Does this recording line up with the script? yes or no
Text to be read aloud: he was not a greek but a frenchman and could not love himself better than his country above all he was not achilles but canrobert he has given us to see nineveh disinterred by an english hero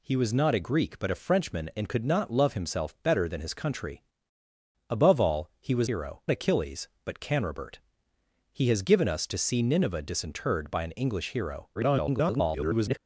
no